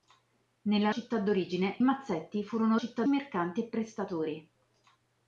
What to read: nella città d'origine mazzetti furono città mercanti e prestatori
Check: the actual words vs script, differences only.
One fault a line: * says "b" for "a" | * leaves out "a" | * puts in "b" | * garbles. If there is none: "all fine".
all fine